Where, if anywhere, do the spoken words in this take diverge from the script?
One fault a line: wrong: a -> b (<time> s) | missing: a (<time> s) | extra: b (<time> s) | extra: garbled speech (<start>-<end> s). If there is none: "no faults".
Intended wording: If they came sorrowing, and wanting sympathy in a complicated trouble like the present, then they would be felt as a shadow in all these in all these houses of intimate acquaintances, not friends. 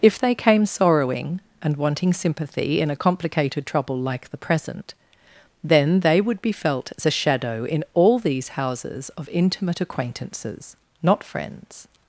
missing: in all these (8.5 s)